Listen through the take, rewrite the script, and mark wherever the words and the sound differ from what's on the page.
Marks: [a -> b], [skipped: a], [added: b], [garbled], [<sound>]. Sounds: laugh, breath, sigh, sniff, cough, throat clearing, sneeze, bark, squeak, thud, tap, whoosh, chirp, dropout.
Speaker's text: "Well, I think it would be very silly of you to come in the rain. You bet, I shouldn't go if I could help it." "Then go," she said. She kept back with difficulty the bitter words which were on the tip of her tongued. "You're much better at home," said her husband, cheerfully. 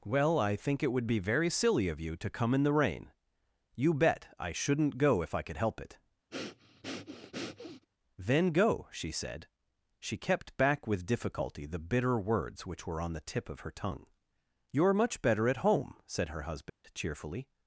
"Well, I think it would be very silly of you to come in the rain. You bet, I shouldn't go if I could help it." [breath] "Then go," she said. She kept back with difficulty the bitter words which were on the tip of her [tongued. -> tongue] "You're much better at home," said her husband, [dropout] cheerfully.